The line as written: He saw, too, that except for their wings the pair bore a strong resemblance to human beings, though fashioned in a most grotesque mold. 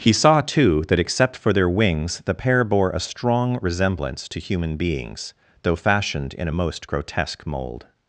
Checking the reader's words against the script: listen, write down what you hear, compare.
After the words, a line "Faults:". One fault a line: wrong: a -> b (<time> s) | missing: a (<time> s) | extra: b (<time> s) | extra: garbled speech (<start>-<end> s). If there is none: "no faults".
He saw, too, that except for their wings the pair bore a strong resemblance to human beings, though fashioned in a most grotesque mold.
Faults:
no faults